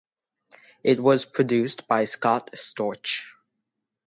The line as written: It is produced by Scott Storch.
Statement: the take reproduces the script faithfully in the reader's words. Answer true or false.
false